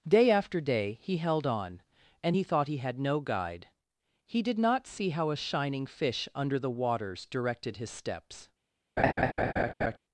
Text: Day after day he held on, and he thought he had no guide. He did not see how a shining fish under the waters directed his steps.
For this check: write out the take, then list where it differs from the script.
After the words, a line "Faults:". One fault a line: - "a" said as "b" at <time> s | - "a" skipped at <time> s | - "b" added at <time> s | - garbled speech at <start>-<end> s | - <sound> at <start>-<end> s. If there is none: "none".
Day after day he held on, and he thought he had no guide. He did not see how a shining fish under the waters directed his steps.
Faults:
- laugh at 9.0-10.0 s